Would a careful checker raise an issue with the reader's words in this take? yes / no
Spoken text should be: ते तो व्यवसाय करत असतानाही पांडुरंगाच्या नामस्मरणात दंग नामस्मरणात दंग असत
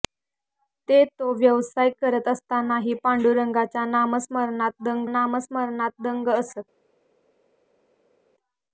no